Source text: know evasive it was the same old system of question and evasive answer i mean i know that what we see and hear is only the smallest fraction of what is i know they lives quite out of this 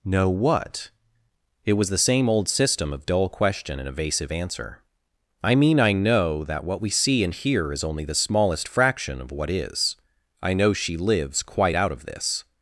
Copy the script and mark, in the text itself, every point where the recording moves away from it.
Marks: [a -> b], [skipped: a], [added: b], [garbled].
know [evasive -> what] it was the same old system of [added: dull] question and evasive answer i mean i know that what we see and hear is only the smallest fraction of what is i know [they -> she] lives quite out of this